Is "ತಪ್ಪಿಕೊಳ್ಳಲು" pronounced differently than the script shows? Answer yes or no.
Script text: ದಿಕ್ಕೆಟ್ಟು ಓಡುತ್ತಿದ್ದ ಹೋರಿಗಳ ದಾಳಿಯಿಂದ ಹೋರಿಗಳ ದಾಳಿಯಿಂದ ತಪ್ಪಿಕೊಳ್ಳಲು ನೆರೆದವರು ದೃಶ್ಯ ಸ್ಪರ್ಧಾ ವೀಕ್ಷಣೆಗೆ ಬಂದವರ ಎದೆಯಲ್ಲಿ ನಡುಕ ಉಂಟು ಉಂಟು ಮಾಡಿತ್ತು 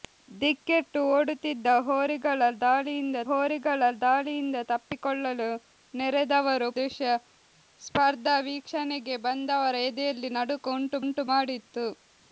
no